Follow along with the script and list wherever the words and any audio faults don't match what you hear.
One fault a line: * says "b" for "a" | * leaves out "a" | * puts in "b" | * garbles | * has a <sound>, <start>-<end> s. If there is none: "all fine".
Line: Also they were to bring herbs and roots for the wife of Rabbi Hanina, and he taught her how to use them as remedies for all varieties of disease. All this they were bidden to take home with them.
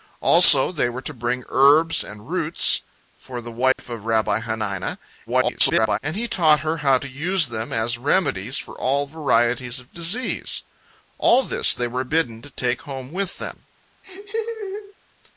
* has a dropout, 3.7-3.8 s
* garbles
* has a laugh, 14.0-14.9 s